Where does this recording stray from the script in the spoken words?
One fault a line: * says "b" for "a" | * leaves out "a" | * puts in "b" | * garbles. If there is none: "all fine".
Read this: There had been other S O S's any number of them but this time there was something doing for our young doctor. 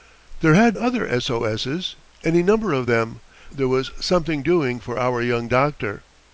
* leaves out "been"
* leaves out "but this time"